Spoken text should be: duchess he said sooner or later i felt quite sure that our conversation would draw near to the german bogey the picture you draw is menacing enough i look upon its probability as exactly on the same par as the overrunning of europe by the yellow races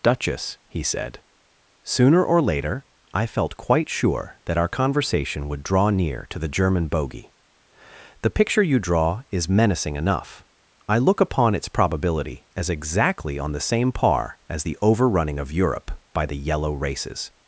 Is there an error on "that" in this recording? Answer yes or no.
no